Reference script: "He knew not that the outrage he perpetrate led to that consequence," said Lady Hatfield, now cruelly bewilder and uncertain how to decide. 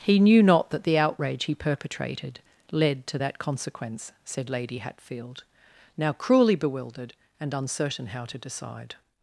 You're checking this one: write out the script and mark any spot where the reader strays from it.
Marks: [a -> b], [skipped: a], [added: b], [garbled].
"He knew not that the outrage he [perpetrate -> perpetrated] led to that consequence," said Lady Hatfield, now cruelly [bewilder -> bewildered] and uncertain how to decide.